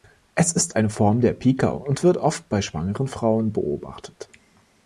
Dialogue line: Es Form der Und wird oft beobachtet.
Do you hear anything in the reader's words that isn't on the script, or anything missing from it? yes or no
yes